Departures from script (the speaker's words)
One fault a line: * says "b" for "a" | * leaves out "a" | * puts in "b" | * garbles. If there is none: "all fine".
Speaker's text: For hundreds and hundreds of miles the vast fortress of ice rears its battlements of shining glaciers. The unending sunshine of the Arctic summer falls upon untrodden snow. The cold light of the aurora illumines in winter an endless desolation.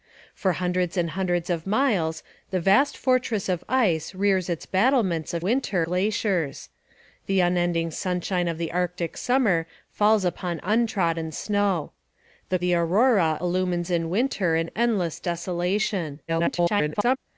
* says "winter" for "shining"
* leaves out "cold light of"
* garbles